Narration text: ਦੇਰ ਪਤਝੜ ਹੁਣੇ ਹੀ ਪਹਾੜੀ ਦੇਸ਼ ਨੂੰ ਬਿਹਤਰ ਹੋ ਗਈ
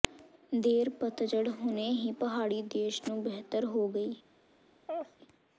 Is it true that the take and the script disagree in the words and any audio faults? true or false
true